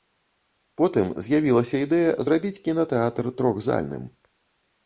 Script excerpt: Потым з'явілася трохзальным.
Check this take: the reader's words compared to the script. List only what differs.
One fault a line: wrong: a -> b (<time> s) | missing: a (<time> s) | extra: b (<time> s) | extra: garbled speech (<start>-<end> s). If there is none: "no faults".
extra: ідэя зрабіць кінатэатр (1.9 s)